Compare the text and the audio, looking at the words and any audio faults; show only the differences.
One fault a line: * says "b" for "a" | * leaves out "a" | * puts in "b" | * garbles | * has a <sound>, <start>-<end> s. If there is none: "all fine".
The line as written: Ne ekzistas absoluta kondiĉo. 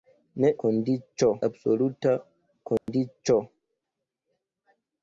* says "kondiĉo" for "ekzistas"
* has a dropout, 2.8-2.9 s